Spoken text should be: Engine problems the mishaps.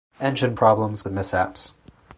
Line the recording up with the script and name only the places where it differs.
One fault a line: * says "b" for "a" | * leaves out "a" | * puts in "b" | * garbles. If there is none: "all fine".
all fine